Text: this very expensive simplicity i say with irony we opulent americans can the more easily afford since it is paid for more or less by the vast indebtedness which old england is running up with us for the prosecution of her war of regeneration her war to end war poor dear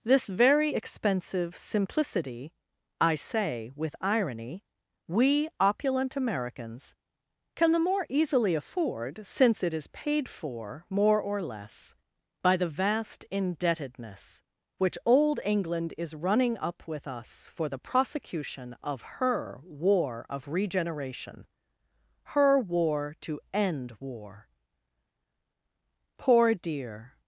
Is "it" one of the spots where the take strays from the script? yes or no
no